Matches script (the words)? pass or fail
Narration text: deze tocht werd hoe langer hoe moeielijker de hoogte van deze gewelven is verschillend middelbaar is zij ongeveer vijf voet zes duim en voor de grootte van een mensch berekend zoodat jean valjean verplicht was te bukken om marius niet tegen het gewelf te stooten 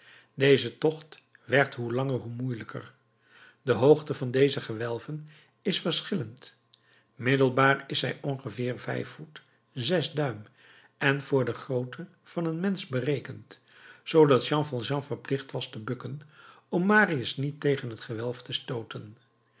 pass